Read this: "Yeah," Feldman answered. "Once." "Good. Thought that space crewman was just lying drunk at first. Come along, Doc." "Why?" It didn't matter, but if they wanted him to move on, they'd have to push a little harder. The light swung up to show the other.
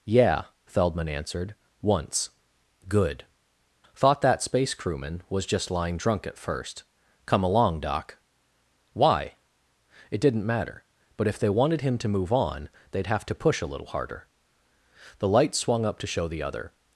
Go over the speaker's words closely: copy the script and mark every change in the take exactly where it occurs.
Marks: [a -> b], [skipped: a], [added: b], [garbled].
"Yeah," Feldman answered. "Once." "Good. Thought that space crewman was just lying drunk at first. Come along, Doc." "Why?" It didn't matter, but if they wanted him to move on, they'd have to push a little harder. The light swung up to show the other.